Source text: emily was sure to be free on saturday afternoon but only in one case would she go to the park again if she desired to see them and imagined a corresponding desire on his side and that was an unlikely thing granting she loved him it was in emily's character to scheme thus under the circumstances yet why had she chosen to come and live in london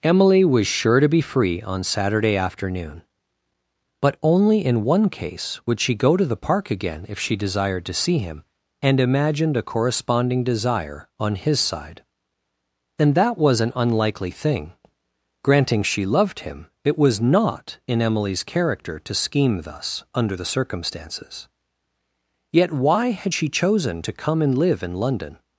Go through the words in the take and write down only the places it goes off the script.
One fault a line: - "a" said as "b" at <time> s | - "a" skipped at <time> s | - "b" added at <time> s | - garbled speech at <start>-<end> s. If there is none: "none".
- "them" said as "him" at 8.2 s
- "not" added at 17.2 s